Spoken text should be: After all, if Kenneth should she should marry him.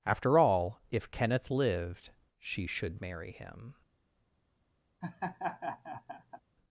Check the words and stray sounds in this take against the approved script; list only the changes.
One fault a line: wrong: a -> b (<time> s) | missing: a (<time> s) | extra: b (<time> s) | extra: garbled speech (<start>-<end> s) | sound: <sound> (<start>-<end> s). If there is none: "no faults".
wrong: should -> lived (1.5 s)
sound: laugh (5.0-6.4 s)